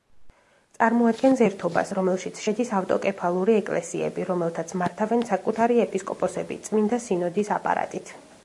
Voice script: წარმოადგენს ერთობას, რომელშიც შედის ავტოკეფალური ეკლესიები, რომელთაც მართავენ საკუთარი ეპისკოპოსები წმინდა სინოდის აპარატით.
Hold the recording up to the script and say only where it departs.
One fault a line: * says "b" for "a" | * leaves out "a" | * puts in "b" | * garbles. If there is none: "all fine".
all fine